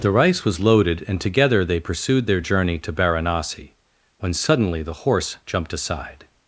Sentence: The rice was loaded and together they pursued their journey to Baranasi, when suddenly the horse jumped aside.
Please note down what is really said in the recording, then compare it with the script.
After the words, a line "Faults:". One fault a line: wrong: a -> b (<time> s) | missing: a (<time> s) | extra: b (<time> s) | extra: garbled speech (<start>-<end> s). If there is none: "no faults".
The rice was loaded and together they pursued their journey to Baranasi, when suddenly the horse jumped aside.
Faults:
no faults